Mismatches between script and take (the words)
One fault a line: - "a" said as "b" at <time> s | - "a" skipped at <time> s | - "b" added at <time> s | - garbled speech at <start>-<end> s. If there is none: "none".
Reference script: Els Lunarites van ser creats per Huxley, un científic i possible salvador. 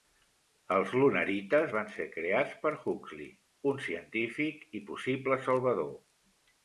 none